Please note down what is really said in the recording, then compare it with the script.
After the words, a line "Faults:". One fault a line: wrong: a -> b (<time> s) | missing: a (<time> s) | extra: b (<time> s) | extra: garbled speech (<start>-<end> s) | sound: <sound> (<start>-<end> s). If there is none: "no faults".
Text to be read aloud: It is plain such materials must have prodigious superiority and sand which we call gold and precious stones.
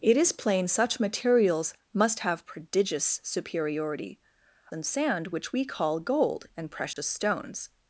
It is plain such materials must have prodigious superiority and sand which we call gold and precious stones.
Faults:
sound: dropout (6.9-7.0 s)